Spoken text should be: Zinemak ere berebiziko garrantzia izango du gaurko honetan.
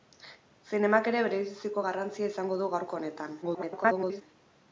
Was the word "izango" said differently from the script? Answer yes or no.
no